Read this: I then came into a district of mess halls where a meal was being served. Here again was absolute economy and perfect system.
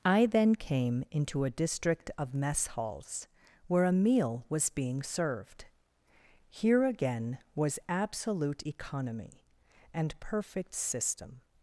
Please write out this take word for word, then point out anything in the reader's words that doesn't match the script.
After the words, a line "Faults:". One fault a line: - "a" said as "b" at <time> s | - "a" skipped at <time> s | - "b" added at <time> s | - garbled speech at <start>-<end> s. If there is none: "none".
I then came into a district of mess halls where a meal was being served. Here again was absolute economy and perfect system.
Faults:
none